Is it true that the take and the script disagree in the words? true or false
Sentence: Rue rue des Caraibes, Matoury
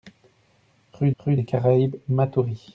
false